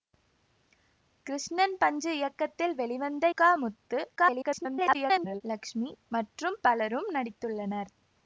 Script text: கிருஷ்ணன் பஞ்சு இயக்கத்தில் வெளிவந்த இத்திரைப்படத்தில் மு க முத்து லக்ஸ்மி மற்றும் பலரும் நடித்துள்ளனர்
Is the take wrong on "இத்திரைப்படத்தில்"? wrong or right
wrong